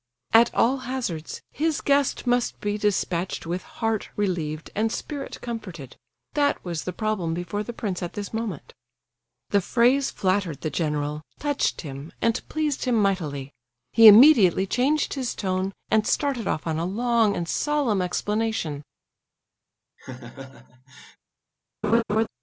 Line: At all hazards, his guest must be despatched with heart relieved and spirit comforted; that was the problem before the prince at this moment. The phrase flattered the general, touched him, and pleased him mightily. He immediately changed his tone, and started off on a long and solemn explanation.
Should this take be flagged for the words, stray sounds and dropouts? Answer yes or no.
yes